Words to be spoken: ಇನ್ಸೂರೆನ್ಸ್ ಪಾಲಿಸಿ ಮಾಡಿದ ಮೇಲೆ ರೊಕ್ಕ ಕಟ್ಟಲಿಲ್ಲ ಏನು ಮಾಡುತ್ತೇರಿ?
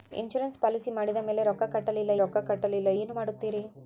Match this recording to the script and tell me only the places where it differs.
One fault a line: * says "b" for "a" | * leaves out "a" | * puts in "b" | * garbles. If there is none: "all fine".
* puts in "ರೊಕ್ಕ ಕಟ್ಟಲಿಲ್ಲ"